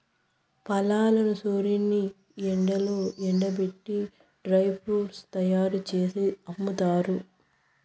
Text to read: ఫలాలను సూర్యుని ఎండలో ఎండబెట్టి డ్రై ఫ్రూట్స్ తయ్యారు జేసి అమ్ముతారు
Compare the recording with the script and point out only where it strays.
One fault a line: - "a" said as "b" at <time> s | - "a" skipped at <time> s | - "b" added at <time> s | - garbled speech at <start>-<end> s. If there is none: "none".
none